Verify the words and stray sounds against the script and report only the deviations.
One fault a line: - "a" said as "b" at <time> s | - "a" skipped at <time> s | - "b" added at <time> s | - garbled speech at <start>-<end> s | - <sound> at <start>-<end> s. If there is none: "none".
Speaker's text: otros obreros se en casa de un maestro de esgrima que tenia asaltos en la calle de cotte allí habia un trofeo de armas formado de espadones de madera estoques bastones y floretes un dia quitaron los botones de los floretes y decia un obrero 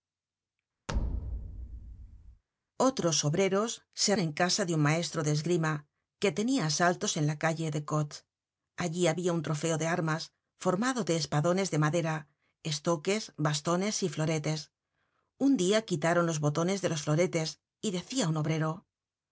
- thud at 0.9-2.4 s